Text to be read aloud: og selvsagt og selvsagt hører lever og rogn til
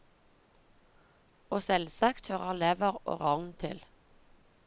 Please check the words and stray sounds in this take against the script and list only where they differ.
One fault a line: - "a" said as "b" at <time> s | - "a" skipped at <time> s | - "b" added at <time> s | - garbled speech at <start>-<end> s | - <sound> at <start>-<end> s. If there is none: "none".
- "og selvsagt" skipped at 2.3 s